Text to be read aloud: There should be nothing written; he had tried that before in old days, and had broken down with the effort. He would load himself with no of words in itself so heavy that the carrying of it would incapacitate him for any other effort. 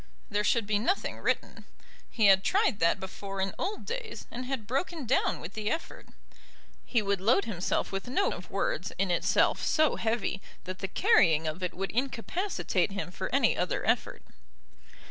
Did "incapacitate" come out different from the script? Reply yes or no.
no